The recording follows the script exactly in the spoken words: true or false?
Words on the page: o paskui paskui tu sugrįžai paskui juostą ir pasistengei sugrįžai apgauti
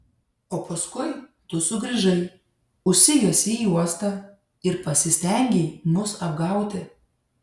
false